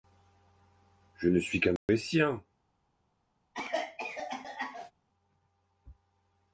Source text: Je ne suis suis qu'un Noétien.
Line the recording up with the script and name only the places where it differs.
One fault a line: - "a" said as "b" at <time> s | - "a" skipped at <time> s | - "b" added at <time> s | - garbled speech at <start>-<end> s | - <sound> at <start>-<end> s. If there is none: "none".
- "suis" skipped at 1.6 s
- dropout at 1.8-1.9 s
- cough at 3.5-4.9 s